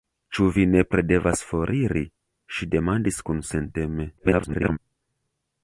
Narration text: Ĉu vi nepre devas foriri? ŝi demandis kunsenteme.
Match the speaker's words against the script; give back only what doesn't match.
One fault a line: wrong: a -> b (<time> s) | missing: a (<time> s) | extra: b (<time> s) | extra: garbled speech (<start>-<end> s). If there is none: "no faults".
extra: garbled speech (4.2-4.8 s)